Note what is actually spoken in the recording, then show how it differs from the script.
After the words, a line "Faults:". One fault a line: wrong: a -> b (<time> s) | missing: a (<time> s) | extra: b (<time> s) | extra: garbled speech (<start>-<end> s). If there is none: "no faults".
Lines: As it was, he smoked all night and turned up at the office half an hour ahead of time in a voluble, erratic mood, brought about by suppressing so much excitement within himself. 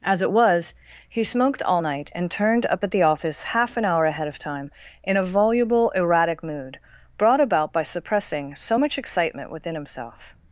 As it was, he smoked all night and turned up at the office half an hour ahead of time in a voluble, erratic mood, brought about by suppressing so much excitement within himself.
Faults:
no faults